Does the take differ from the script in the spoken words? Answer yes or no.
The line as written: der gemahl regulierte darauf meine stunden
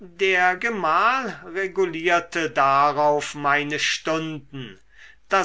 no